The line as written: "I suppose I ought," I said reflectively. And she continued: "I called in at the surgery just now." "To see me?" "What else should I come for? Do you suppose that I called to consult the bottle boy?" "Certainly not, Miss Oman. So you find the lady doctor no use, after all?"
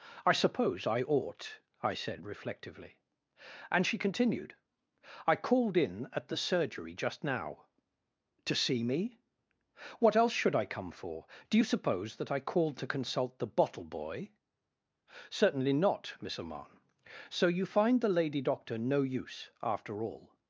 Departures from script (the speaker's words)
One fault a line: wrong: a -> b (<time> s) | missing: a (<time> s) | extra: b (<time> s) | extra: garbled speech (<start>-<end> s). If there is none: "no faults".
no faults